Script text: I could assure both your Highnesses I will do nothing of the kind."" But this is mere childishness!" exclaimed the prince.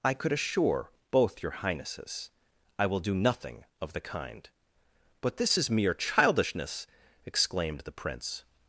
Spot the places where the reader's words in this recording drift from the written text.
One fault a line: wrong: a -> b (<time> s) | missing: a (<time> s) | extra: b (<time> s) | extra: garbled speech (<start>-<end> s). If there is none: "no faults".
no faults